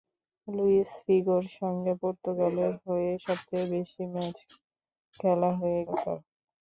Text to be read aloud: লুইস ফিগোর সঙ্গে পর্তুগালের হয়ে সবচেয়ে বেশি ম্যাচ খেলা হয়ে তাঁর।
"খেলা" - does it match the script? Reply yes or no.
yes